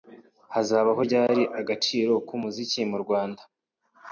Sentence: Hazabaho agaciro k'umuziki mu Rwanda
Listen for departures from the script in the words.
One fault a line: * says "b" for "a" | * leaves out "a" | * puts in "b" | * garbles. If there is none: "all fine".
* puts in "ryari"